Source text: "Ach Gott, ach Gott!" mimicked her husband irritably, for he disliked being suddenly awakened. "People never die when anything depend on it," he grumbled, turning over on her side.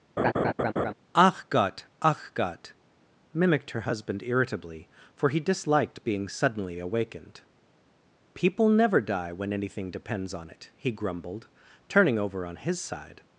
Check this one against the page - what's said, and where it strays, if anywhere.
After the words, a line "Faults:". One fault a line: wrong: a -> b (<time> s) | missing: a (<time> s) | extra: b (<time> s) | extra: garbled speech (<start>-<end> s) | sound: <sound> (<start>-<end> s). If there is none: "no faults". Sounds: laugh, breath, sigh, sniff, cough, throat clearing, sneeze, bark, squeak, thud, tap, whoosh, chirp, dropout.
"Ach Gott, ach Gott!" mimicked her husband irritably, for he disliked being suddenly awakened. "People never die when anything depends on it," he grumbled, turning over on his side.
Faults:
sound: laugh (0.2-0.9 s)
wrong: depend -> depends (9.9 s)
wrong: her -> his (12.6 s)